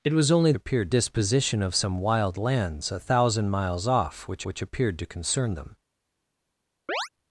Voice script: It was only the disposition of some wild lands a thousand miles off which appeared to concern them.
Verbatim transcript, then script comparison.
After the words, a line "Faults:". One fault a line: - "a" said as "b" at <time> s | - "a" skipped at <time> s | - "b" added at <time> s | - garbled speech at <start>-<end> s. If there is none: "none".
It was only appeared disposition of some wild lands a thousand miles off which which appeared to concern them.
Faults:
- "the" said as "appeared" at 0.5 s
- "which" added at 4.5 s